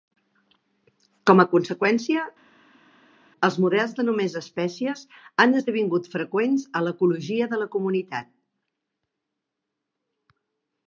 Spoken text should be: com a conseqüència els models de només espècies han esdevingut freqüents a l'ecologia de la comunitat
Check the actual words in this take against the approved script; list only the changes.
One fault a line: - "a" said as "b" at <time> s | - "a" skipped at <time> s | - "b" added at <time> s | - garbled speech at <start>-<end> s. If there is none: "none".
none